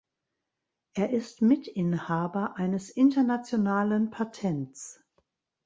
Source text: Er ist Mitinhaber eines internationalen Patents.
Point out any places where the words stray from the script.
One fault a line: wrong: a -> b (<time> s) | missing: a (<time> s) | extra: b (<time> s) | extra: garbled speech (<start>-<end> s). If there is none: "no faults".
no faults